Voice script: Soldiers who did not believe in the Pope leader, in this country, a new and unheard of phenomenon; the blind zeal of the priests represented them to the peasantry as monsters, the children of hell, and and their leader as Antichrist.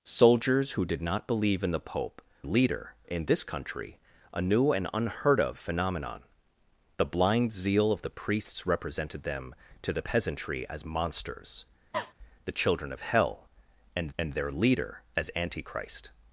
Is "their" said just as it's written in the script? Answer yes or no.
yes